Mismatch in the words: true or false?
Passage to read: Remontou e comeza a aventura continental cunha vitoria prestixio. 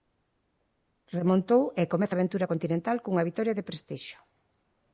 true